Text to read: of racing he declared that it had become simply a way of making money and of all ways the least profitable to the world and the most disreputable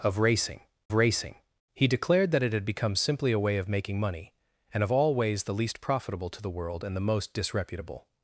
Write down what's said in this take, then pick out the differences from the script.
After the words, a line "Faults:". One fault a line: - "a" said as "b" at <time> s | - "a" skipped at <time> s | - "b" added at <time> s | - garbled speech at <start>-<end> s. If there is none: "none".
of racing racing he declared that it had become simply a way of making money and of all ways the least profitable to the world and the most disreputable
Faults:
- "racing" added at 0.9 s